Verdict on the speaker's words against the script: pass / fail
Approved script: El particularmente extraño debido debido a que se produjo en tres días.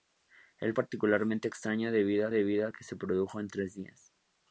pass